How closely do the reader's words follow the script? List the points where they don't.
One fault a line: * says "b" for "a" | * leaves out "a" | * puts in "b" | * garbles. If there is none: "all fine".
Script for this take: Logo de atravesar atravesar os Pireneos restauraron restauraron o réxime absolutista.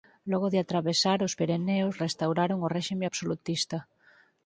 * leaves out "atravesar"
* leaves out "restauraron"